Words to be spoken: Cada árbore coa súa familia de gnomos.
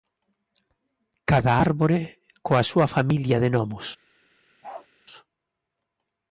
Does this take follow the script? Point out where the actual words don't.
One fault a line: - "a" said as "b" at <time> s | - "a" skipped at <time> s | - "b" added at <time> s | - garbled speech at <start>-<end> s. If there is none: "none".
none